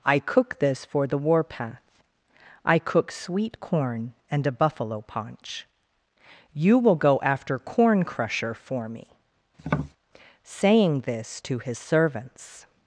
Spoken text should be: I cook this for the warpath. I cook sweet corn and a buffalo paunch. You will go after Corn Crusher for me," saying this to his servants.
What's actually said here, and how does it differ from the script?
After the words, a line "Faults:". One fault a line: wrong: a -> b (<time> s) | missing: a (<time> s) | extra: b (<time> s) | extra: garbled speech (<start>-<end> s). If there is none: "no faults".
I cook this for the warpath. I cook sweet corn and a buffalo paunch. You will go after Corn Crusher for me," saying this to his servants.
Faults:
no faults